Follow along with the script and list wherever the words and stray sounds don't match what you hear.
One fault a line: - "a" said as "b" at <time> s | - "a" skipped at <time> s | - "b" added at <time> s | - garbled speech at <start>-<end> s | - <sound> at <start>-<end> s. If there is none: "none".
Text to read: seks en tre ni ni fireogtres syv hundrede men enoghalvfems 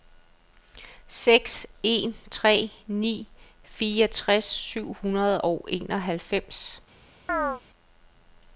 - "ni" skipped at 3.3 s
- "men" said as "og" at 5.4 s
- chirp at 7.3-7.6 s